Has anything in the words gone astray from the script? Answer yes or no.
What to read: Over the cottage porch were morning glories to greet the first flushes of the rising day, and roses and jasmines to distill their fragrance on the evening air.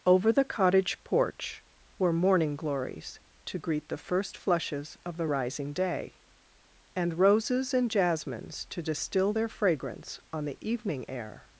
no